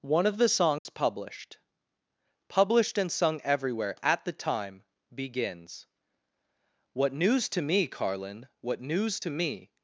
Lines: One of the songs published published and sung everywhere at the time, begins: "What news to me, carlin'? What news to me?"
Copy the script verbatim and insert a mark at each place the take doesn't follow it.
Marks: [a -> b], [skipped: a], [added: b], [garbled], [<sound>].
One of the songs [dropout] published published and sung everywhere at the time, begins: "What news to me, carlin'? What news to me?"